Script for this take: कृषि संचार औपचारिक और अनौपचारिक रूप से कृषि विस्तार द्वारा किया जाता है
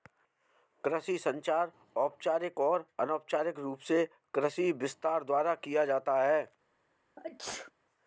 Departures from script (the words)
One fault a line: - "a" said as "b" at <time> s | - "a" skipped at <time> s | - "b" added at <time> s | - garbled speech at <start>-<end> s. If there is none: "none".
none